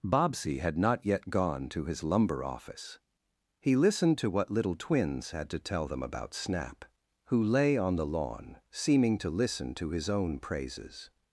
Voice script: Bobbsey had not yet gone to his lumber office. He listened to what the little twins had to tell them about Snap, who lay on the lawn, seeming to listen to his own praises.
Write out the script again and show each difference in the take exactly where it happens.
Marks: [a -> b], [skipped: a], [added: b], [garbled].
Bobbsey had not yet gone to his lumber office. He listened to what [skipped: the] little twins had to tell them about Snap, who lay on the lawn, seeming to listen to his own praises.